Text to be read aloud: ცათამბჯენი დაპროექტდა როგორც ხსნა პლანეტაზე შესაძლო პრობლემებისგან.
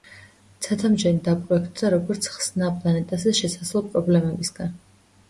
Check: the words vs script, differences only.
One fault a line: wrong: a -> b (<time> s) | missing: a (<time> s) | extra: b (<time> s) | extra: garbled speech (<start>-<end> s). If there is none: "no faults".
no faults